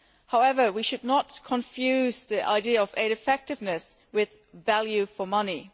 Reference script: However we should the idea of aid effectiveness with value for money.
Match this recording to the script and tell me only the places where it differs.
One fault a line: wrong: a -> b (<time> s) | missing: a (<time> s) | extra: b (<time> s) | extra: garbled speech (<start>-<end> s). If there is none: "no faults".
extra: not confuse (1.0 s)